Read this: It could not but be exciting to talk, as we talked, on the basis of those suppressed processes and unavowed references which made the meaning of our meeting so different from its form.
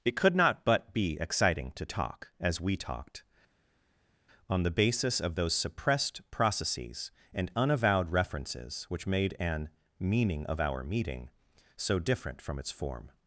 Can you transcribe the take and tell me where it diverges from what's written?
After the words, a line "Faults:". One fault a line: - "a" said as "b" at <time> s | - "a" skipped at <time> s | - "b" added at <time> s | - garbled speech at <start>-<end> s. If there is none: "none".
It could not but be exciting to talk, as we talked, on the basis of those suppressed processes and unavowed references which made an meaning of our meeting so different from its form.
Faults:
- "the" said as "an" at 9.4 s